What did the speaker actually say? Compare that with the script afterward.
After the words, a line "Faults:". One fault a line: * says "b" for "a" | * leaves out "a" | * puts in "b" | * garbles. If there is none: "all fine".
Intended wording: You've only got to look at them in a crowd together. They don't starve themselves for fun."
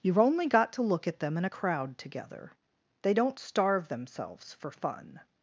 You've only got to look at them in a crowd together. They don't starve themselves for fun."
Faults:
all fine